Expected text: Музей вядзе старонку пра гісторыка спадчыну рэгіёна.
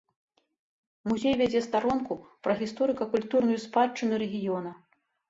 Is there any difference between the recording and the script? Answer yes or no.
yes